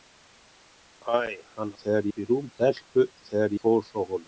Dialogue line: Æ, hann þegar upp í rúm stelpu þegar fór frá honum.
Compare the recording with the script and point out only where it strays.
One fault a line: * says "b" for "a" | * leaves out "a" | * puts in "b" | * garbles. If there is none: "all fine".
all fine